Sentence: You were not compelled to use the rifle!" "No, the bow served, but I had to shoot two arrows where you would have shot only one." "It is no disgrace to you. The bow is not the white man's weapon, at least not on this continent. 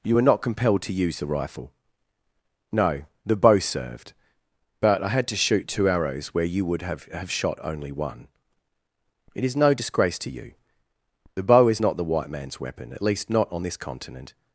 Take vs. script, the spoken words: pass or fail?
fail